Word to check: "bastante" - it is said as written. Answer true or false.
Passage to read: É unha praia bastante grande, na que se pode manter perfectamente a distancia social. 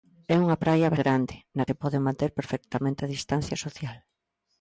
false